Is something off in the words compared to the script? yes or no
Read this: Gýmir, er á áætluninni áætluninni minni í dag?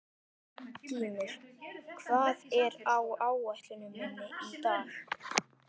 yes